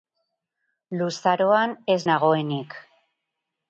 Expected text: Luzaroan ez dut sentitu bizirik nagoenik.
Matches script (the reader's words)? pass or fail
fail